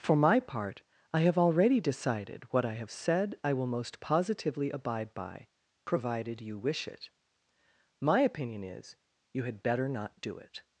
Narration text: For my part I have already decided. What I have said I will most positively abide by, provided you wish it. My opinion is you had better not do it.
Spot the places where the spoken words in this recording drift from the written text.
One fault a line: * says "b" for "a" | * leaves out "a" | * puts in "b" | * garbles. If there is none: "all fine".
all fine